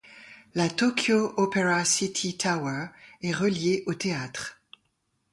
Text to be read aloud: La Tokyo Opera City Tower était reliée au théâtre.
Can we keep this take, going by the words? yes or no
no